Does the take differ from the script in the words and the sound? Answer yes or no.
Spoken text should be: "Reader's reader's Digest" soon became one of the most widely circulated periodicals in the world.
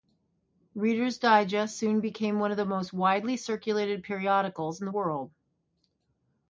yes